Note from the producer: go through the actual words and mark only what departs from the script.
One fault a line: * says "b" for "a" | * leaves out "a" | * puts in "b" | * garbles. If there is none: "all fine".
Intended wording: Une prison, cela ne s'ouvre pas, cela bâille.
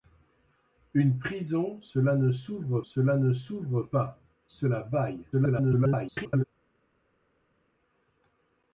* puts in "cela ne s'ouvre"
* garbles